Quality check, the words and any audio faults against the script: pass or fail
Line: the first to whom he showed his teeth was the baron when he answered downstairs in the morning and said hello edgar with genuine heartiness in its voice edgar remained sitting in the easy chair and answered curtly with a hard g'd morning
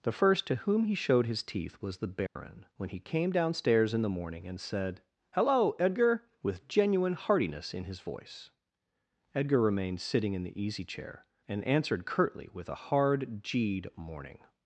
fail